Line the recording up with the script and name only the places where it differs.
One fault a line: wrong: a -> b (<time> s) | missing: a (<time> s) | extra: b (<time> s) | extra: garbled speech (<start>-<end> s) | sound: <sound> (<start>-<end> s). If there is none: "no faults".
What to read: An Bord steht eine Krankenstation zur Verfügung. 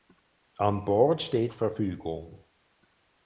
missing: eine Krankenstation zur (1.5 s)